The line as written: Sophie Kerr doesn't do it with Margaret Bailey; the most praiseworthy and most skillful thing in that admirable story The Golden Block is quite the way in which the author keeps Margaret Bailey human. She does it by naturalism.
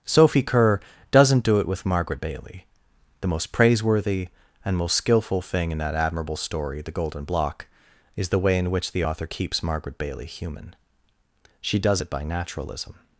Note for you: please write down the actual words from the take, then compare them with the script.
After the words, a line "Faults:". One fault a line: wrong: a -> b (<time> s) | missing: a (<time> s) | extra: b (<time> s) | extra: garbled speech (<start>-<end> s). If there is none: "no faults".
Sophie Kerr doesn't do it with Margaret Bailey; the most praiseworthy and most skillful thing in that admirable story The Golden Block is the way in which the author keeps Margaret Bailey human. She does it by naturalism.
Faults:
missing: quite (8.3 s)